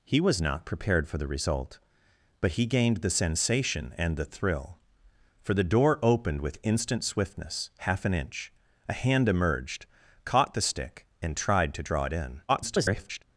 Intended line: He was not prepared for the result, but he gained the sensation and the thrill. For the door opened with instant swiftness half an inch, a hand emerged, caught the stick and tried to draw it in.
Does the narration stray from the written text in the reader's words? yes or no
yes